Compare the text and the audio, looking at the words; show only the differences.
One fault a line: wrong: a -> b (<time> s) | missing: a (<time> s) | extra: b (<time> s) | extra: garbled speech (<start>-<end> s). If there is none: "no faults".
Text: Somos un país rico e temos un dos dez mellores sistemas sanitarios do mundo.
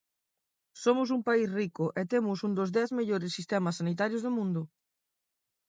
no faults